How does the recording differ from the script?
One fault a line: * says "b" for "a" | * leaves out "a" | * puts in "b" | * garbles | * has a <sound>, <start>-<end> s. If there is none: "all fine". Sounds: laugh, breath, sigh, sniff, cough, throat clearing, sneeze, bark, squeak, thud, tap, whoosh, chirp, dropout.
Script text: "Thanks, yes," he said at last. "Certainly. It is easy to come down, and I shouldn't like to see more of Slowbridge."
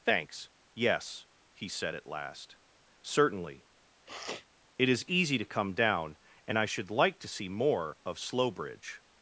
* has a sniff, 4.1-4.5 s
* says "should" for "shouldn't"